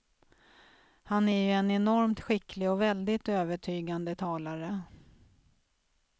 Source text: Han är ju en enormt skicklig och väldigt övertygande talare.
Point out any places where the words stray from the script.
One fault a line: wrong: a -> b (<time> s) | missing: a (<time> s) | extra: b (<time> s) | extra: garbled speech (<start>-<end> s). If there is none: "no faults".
no faults